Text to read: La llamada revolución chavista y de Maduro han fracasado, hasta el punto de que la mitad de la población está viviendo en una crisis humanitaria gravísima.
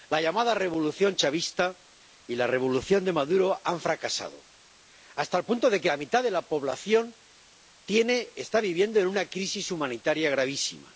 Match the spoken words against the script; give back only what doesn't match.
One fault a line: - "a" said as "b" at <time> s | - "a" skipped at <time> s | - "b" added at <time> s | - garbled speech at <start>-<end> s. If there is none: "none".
- "la revolución" added at 2.4 s